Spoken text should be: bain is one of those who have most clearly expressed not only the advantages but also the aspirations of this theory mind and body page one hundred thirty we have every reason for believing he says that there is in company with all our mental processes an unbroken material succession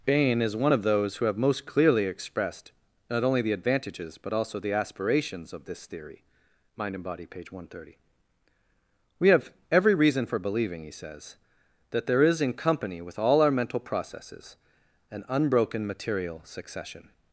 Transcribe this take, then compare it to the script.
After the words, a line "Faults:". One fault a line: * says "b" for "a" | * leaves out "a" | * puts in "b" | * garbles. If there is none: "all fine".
bain is one of those who have most clearly expressed not only the advantages but also the aspirations of this theory mind and body page one hundred thirty we have every reason for believing he says that there is in company with all our mental processes an unbroken material succession
Faults:
all fine